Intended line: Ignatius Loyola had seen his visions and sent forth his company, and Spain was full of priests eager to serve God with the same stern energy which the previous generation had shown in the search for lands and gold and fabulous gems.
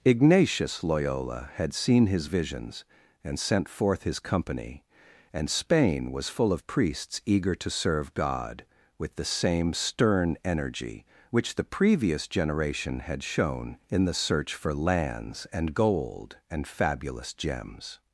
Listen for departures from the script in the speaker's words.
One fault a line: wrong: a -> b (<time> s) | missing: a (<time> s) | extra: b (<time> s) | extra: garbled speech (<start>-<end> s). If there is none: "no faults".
no faults